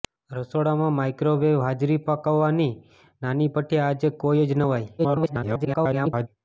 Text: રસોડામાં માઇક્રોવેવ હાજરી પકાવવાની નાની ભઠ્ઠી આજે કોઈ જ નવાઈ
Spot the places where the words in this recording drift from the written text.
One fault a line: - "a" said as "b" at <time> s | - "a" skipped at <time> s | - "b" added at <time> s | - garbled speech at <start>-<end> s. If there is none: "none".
- garbled speech at 5.0-6.3 s